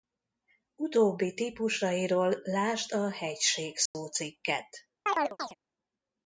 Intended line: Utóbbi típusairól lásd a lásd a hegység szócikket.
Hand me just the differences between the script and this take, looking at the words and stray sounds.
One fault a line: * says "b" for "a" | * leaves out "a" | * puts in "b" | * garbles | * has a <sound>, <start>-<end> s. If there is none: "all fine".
* leaves out "lásd a"
* has a dropout, 3.9-3.9 s
* has a chirp, 5.1-5.5 s